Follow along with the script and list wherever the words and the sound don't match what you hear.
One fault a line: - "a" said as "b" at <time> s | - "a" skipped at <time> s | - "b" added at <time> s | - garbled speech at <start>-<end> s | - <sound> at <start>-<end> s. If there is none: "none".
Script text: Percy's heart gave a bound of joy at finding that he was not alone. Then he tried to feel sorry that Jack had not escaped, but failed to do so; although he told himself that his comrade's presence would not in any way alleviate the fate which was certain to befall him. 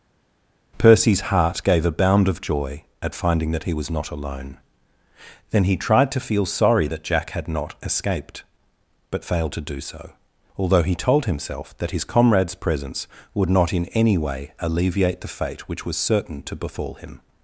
none